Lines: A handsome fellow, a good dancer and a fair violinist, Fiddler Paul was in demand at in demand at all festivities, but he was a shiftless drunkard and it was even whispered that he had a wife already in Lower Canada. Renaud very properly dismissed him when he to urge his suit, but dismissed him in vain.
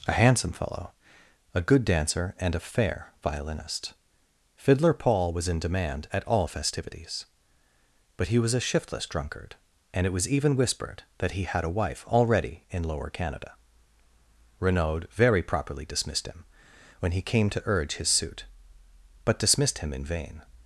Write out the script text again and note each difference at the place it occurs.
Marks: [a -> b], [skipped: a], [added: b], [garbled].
A handsome fellow, a good dancer and a fair violinist, Fiddler Paul was in demand at [skipped: in demand at] all festivities, but he was a shiftless drunkard and it was even whispered that he had a wife already in Lower Canada. Renaud very properly dismissed him when he [added: came] to urge his suit, but dismissed him in vain.